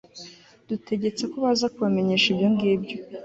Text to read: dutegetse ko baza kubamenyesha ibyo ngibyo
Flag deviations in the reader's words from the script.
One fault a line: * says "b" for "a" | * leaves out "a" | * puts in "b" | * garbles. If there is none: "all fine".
all fine